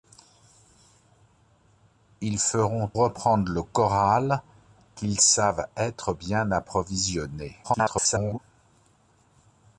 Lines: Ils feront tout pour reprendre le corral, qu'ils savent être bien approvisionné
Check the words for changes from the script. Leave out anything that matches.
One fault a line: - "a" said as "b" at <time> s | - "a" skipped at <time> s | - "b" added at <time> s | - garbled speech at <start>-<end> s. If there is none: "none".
- "tout pour" skipped at 2.9 s
- garbled speech at 7.6-8.4 s